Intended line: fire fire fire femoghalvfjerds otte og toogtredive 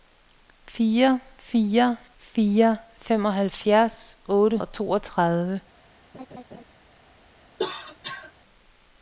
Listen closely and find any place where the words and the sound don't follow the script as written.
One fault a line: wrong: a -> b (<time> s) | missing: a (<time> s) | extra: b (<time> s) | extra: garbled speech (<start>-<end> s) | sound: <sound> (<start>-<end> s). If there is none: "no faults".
sound: laugh (6.1-6.6 s)
sound: cough (7.6-8.3 s)